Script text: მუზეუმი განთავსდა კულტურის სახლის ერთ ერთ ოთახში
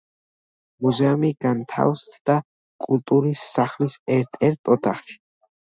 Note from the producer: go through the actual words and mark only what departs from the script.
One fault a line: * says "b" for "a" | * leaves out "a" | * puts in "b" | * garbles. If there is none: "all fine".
all fine